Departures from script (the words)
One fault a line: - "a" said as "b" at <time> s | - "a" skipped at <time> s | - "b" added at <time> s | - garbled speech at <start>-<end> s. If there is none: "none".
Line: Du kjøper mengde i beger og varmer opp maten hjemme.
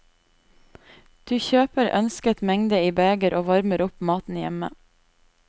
- "ønsket" added at 2.0 s